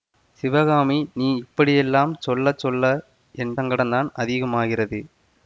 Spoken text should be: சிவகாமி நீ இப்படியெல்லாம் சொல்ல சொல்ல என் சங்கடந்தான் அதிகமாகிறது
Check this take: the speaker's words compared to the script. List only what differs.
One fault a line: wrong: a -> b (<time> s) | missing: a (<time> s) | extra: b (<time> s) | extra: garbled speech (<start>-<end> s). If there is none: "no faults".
no faults